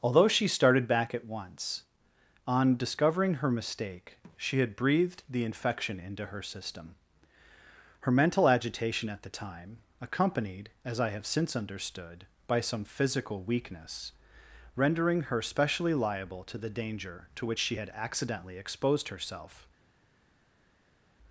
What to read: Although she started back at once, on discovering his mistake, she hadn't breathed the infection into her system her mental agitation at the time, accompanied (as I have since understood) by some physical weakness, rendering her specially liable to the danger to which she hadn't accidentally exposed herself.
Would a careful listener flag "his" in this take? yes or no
yes